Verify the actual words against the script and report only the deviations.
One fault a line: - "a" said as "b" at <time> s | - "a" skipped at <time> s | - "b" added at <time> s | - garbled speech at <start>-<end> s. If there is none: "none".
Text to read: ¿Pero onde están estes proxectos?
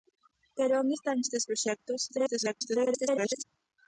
- garbled speech at 2.1-3.4 s